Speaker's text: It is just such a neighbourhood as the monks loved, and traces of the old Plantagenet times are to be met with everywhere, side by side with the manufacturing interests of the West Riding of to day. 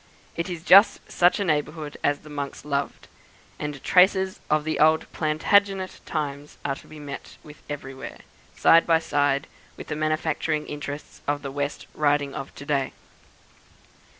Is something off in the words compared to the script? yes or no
no